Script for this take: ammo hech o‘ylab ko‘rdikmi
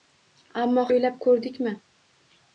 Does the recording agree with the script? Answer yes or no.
no